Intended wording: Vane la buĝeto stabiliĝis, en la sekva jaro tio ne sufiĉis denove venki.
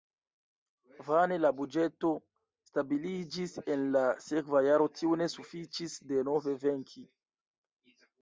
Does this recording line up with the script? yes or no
yes